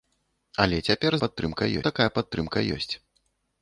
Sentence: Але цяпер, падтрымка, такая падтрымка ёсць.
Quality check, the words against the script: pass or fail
pass